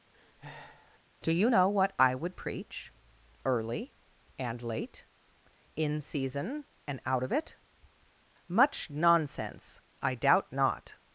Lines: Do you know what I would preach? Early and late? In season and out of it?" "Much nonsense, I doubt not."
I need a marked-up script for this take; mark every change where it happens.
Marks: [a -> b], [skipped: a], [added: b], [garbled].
Do you know what I would preach? Early and late? In season and out of it?" "Much nonsense, I doubt not."